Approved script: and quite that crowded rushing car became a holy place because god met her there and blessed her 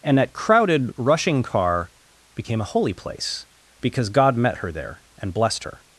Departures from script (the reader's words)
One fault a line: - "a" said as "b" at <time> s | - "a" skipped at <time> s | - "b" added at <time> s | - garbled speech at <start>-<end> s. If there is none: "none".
- "quite" skipped at 0.2 s